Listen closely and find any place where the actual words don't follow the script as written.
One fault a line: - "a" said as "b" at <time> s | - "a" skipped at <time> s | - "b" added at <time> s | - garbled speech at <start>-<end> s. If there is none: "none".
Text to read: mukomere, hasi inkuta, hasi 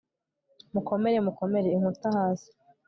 - "hasi" said as "mukomere" at 1.3 s